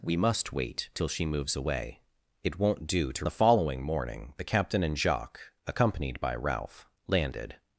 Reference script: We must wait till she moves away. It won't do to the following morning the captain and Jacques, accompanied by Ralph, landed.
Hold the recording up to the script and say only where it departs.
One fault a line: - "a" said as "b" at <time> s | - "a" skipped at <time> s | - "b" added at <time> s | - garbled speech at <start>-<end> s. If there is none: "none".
none